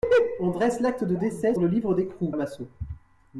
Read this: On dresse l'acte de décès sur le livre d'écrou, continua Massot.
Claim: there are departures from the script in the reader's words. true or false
true